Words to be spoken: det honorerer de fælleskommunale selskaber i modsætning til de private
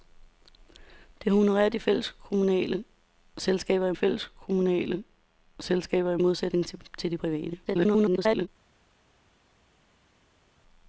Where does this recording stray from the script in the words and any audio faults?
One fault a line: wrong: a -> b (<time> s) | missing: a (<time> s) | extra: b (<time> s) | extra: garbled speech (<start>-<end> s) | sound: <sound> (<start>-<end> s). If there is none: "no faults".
extra: fælleskommunale selskaber i (3.9 s)
extra: garbled speech (7.7-8.5 s)